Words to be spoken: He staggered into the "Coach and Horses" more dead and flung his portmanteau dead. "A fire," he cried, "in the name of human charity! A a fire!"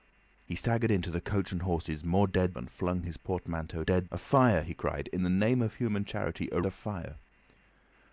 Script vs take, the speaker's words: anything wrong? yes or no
no